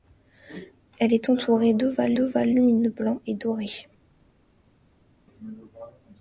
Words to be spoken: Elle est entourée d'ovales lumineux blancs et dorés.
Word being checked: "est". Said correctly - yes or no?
yes